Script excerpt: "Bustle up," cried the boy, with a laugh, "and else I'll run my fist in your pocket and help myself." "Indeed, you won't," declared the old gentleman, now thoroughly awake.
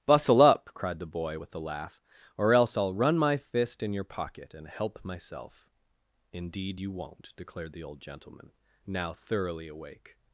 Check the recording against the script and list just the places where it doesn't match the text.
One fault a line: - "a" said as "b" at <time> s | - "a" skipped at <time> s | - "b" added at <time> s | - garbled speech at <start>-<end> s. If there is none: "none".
- "and" said as "or" at 2.4 s